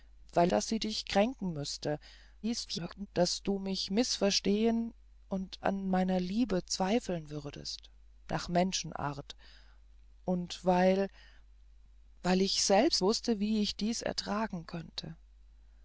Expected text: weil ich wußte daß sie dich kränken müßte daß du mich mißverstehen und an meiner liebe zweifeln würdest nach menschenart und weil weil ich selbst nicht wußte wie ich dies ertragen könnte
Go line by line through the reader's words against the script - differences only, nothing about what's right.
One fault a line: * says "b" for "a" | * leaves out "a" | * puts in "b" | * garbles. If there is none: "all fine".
* leaves out "ich wußte"
* garbles
* leaves out "nicht"